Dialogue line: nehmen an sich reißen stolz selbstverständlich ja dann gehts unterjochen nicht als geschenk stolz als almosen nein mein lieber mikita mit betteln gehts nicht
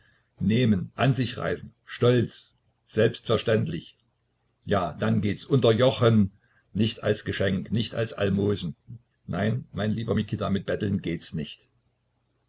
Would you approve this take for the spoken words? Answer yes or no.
no